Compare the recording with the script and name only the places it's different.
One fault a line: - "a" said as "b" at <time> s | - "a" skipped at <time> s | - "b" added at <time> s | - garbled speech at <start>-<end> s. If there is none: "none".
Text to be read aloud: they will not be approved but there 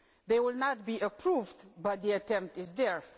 - "the attempt is" added at 2.0 s